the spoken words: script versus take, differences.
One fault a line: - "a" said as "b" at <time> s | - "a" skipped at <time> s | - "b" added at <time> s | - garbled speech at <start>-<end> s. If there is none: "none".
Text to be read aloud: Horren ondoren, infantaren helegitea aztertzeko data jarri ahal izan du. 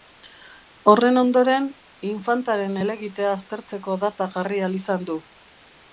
none